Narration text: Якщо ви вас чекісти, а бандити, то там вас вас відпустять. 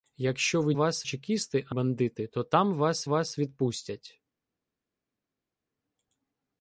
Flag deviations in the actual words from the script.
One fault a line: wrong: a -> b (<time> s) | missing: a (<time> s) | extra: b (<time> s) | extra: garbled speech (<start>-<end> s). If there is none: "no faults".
no faults